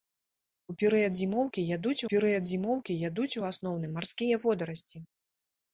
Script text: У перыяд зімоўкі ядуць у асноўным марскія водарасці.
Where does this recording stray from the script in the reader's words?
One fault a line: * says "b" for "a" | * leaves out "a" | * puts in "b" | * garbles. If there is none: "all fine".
* puts in "перыяд зімоўкі ядуць"